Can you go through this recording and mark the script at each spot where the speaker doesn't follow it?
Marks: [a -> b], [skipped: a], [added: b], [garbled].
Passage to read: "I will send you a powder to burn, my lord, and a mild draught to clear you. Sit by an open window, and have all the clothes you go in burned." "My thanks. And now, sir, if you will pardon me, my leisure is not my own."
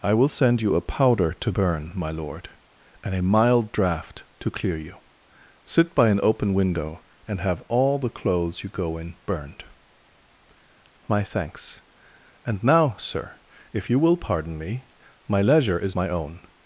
"I will send you a powder to burn, my lord, and a mild draught to clear you. Sit by an open window, and have all the clothes you go in burned." "My thanks. And now, sir, if you will pardon me, my leisure is [skipped: not] my own."